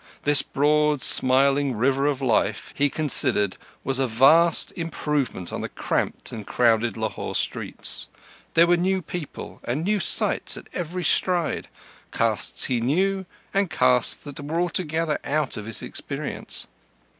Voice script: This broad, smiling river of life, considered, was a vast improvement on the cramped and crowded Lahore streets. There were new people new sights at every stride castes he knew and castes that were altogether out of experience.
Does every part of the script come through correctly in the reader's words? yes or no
no